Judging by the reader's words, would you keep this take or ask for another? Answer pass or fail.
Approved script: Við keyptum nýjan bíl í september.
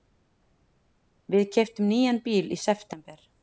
pass